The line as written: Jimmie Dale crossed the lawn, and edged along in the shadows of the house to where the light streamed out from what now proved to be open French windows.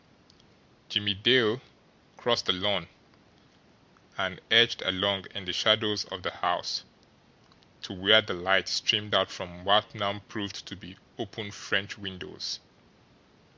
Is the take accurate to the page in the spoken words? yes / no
yes